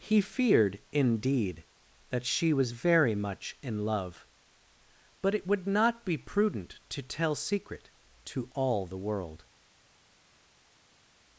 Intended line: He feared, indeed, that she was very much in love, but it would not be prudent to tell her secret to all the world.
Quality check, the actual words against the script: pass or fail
fail